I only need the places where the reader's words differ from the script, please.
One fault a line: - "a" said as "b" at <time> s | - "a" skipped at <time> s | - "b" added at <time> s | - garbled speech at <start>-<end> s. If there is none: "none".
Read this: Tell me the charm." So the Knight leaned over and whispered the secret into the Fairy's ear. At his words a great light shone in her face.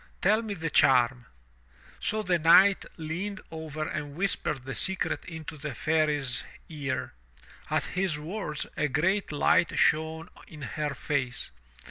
none